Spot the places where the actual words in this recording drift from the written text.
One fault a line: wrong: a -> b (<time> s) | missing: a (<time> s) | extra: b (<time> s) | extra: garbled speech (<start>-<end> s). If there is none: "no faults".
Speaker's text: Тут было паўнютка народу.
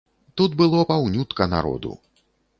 no faults